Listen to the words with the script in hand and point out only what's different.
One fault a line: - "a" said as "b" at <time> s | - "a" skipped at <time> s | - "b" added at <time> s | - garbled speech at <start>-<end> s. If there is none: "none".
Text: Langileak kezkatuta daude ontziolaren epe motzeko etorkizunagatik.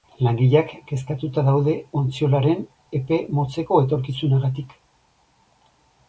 none